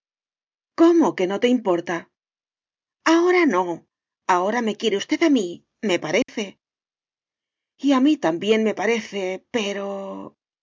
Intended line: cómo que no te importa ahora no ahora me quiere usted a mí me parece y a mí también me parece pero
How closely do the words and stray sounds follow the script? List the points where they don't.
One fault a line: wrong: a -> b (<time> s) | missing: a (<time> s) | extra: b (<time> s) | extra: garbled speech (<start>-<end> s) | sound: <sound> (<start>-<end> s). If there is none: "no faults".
sound: dropout (6.2-6.3 s)